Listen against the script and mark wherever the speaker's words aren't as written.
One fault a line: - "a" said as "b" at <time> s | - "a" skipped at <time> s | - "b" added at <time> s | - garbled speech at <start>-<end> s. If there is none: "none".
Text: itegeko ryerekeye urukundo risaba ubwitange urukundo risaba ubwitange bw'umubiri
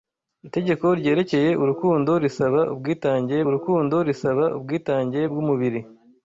none